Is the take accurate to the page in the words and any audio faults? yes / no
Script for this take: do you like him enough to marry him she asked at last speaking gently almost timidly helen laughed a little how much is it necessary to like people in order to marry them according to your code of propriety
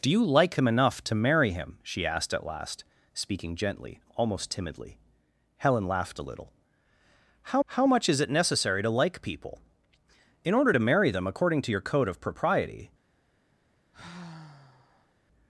no